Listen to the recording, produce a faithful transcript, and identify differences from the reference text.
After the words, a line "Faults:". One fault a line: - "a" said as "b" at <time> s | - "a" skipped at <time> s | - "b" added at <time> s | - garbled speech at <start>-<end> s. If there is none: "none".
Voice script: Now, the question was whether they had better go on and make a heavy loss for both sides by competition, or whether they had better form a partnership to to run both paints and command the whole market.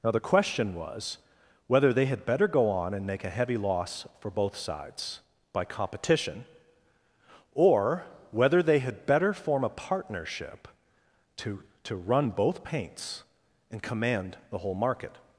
Now, the question was whether they had better go on and make a heavy loss for both sides by competition, or whether they had better form a partnership to to run both paints and command the whole market.
Faults:
none